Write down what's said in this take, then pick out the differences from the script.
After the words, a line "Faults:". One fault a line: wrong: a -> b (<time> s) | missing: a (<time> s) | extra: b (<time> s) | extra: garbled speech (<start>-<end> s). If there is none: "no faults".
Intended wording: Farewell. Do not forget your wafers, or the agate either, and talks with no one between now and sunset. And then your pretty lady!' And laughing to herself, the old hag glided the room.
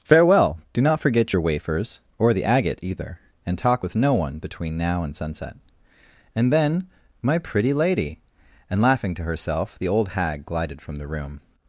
Farewell. Do not forget your wafers, or the agate either, and talk with no one between now and sunset. And then my pretty lady!' And laughing to herself, the old hag glided from the room.
Faults:
wrong: talks -> talk (3.6 s)
wrong: your -> my (7.2 s)
extra: from (10.8 s)